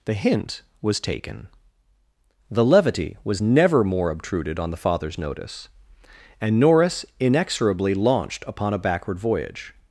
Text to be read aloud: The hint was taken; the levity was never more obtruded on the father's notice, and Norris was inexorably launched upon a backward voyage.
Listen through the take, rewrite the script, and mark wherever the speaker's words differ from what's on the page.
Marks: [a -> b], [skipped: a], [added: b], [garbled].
The hint was taken; the levity was never more obtruded on the father's notice, and Norris [skipped: was] inexorably launched upon a backward voyage.